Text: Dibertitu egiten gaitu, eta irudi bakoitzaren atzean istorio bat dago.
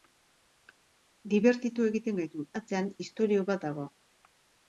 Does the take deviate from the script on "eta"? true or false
true